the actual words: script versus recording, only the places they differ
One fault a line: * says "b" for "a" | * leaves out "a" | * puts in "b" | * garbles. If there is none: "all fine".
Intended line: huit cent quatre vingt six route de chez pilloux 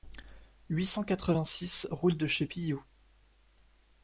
all fine